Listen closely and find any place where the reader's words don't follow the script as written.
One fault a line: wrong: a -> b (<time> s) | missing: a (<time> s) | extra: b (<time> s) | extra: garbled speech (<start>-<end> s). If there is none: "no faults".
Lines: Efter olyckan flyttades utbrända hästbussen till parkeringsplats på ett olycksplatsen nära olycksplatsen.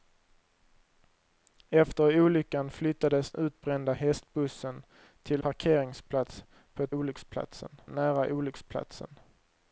no faults